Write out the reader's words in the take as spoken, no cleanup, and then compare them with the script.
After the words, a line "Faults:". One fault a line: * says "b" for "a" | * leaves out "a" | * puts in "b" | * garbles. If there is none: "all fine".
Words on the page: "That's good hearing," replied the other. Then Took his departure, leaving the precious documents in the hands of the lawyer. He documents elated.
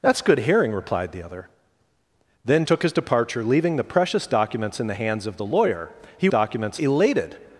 "That's good hearing," replied the other. Then Took his departure, leaving the precious documents in the hands of the lawyer. He documents elated.
Faults:
all fine